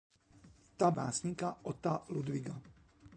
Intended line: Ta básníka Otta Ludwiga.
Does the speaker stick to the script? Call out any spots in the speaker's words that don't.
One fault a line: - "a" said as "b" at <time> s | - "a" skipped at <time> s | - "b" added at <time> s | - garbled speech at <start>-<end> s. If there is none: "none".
none